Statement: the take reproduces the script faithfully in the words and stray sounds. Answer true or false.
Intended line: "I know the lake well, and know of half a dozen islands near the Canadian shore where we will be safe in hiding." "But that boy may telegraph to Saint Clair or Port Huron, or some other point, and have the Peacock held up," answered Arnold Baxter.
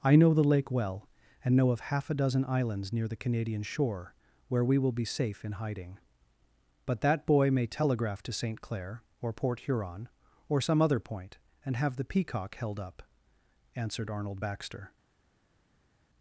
true